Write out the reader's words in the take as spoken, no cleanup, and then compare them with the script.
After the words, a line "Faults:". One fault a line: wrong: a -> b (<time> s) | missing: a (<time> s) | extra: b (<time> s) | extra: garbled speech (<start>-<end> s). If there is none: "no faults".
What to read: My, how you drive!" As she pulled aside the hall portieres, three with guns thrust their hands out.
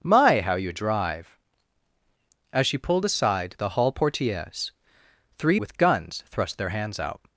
My, how you drive!" As she pulled aside the hall portieres, three with guns thrust their hands out.
Faults:
no faults